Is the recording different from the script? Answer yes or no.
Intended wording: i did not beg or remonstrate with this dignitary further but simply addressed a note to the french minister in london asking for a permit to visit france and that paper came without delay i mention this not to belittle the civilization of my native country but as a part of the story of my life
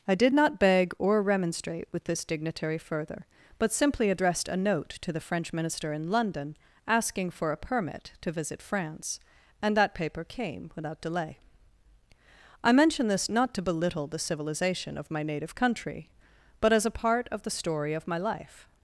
no